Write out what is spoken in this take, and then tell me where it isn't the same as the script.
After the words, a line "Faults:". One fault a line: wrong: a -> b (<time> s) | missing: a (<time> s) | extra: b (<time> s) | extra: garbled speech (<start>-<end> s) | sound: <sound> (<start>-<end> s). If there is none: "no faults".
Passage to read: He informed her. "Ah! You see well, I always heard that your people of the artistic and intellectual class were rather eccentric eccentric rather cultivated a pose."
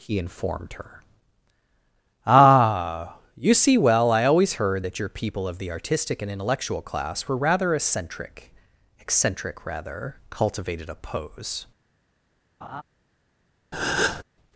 He informed her. "Ah! You see well, I always heard that your people of the artistic and intellectual class were rather eccentric eccentric rather cultivated a pose."
Faults:
sound: laugh (12.6-12.8 s)
sound: breath (13.7-14.2 s)